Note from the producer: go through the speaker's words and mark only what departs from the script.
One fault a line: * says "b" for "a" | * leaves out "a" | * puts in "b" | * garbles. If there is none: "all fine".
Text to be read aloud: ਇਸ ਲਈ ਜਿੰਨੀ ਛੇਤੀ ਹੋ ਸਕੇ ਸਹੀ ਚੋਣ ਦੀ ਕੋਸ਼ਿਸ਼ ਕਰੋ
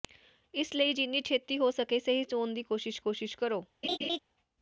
* puts in "ਕੋਸ਼ਿਸ਼"